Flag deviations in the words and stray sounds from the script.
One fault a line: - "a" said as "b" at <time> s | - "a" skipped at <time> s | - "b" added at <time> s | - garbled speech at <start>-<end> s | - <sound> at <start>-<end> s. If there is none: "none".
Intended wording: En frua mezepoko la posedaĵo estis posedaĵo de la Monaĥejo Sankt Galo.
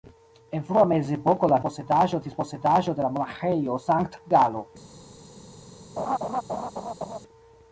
- laugh at 6.0-7.2 s